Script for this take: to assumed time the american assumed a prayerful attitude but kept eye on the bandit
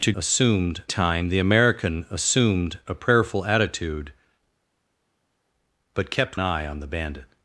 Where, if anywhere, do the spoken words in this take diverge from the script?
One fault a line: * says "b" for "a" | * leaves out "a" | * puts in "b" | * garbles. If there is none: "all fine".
all fine